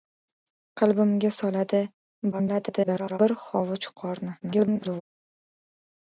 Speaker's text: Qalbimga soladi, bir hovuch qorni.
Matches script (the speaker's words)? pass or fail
fail